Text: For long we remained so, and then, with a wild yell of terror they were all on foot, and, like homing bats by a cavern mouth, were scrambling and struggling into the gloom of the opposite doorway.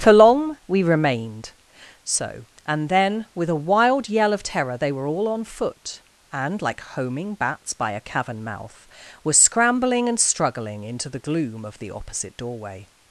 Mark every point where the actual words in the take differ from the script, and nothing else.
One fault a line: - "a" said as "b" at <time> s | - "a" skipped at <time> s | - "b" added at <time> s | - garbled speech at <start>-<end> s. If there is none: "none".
none